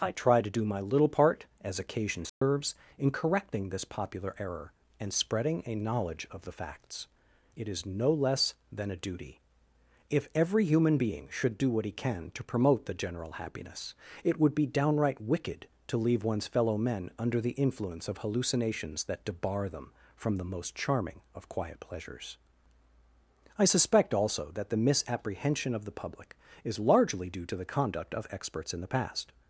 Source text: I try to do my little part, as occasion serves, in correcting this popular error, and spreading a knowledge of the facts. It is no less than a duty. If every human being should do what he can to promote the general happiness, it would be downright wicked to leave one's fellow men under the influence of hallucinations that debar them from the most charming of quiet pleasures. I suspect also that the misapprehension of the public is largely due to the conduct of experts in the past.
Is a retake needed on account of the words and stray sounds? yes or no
yes